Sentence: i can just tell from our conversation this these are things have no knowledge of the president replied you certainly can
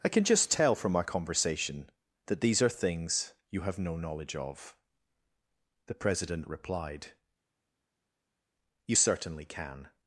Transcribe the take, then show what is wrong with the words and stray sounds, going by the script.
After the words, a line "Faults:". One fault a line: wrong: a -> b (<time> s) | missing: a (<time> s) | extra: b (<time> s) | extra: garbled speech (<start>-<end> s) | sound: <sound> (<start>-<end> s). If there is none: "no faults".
i can just tell from our conversation that these are things you have no knowledge of the president replied you certainly can
Faults:
wrong: this -> that (2.3 s)
extra: you (3.5 s)